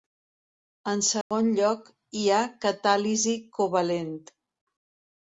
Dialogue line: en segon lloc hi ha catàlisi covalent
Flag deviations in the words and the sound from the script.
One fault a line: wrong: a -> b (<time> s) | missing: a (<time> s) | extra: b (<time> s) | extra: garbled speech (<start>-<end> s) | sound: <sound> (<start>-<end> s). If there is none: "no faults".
sound: dropout (1.2-1.3 s)